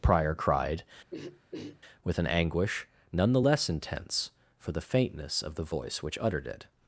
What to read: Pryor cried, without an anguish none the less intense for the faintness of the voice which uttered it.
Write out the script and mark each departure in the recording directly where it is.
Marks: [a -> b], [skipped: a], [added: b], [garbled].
Pryor cried, [without -> with] an anguish none the less intense for the faintness of the voice which uttered it.